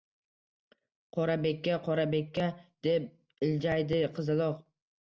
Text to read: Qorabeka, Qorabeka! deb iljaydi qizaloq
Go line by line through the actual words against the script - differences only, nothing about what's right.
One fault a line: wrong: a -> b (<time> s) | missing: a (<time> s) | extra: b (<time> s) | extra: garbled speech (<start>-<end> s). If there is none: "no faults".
no faults